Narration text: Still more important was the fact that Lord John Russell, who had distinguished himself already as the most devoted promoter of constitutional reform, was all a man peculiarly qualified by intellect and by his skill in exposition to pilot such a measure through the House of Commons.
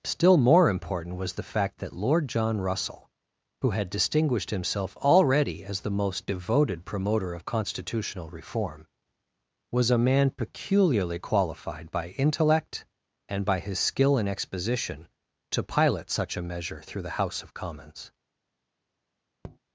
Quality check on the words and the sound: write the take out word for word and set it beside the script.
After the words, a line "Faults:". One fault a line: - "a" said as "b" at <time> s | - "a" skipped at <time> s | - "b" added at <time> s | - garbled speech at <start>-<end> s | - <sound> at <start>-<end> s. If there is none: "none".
Still more important was the fact that Lord John Russell, who had distinguished himself already as the most devoted promoter of constitutional reform, was a man peculiarly qualified by intellect and by his skill in exposition to pilot such a measure through the House of Commons.
Faults:
- "all" skipped at 9.9 s
- tap at 19.4-19.6 s